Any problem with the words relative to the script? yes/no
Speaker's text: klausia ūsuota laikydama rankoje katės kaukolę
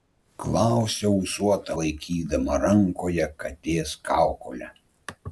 no